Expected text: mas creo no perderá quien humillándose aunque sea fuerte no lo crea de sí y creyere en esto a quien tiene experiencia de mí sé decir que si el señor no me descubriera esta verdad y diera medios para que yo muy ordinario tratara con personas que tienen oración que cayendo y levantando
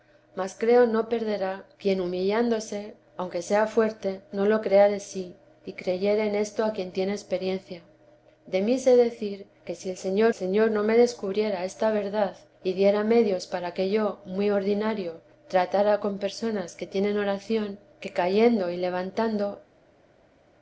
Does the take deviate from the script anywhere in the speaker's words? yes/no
yes